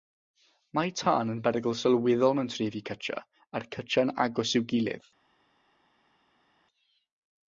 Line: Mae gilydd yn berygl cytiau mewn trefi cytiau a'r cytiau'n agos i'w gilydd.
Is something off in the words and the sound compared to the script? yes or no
yes